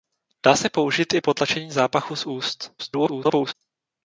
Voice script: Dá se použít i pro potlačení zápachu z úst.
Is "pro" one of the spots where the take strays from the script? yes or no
yes